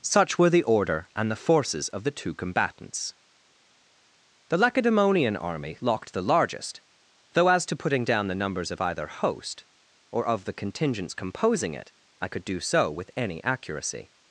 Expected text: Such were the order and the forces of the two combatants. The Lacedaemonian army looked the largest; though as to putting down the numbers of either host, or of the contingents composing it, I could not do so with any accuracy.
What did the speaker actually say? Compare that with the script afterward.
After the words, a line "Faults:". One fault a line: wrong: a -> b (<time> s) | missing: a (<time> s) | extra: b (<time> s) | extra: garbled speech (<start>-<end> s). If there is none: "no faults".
Such were the order and the forces of the two combatants. The Lacedaemonian army locked the largest; though as to putting down the numbers of either host, or of the contingents composing it, I could do so with any accuracy.
Faults:
wrong: looked -> locked (5.8 s)
missing: not (12.4 s)